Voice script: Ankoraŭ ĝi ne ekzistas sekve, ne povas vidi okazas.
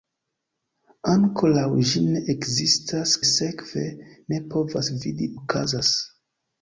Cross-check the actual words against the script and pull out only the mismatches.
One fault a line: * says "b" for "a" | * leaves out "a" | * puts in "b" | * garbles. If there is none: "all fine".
all fine